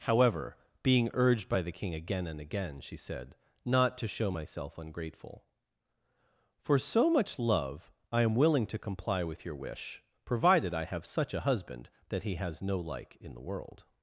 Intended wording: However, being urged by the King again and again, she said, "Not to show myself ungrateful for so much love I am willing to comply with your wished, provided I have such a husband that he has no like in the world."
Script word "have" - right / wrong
right